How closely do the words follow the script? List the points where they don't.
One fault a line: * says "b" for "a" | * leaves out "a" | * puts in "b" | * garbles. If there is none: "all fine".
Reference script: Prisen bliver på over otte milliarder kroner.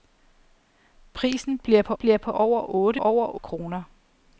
* puts in "bliver på"
* says "over" for "milliarder"